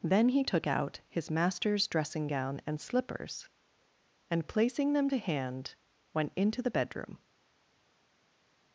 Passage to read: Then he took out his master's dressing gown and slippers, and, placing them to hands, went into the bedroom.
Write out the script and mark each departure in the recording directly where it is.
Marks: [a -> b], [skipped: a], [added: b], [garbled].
Then he took out his master's dressing gown and slippers, and, placing them to [hands, -> hand] went into the bedroom.